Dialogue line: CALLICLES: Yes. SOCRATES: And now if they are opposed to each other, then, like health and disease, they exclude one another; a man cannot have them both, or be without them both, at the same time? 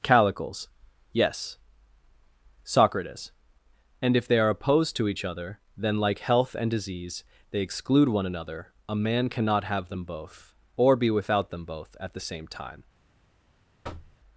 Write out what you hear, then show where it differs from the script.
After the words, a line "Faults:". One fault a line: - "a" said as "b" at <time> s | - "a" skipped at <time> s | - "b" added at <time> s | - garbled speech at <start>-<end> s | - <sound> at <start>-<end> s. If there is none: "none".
CALLICLES: Yes. SOCRATES: And if they are opposed to each other, then, like health and disease, they exclude one another; a man cannot have them both, or be without them both, at the same time?
Faults:
- "now" skipped at 4.1 s
- thud at 13.8-14.2 s